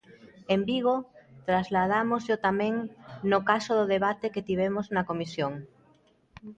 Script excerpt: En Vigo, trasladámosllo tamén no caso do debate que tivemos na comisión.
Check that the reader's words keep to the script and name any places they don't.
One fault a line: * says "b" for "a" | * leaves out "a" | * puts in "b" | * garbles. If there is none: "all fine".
all fine